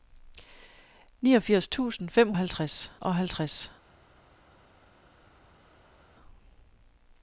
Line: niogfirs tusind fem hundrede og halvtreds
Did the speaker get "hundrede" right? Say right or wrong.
wrong